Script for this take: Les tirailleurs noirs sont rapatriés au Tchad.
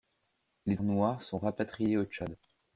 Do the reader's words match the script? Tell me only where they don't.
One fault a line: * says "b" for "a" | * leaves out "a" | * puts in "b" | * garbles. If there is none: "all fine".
* leaves out "tirailleurs"